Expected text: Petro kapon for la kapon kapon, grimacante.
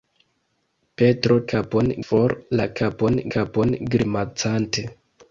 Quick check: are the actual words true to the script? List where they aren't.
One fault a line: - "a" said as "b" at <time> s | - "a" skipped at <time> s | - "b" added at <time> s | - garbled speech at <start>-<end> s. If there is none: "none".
none